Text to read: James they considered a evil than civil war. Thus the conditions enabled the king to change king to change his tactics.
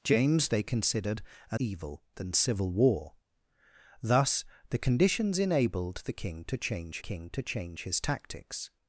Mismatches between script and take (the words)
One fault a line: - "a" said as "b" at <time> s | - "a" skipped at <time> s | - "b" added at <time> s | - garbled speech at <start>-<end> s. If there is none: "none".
none